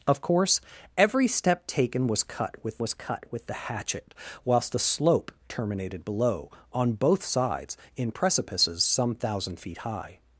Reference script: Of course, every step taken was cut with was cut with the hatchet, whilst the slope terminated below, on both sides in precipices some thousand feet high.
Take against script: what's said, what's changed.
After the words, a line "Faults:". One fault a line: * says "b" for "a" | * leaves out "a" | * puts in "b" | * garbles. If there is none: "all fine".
Of course, every step taken was cut with was cut with the hatchet, whilst the slope terminated below, on both sides in precipices some thousand feet high.
Faults:
all fine